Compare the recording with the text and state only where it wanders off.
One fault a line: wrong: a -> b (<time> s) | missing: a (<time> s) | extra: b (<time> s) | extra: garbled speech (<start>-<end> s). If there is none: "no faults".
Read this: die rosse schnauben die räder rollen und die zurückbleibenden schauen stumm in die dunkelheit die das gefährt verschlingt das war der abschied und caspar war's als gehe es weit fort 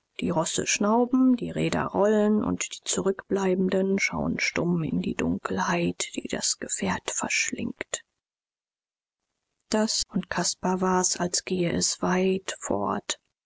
missing: war der abschied (10.0 s)